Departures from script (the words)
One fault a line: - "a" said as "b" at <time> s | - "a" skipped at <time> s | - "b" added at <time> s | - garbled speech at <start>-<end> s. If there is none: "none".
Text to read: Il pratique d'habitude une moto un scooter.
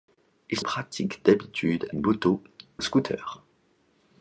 none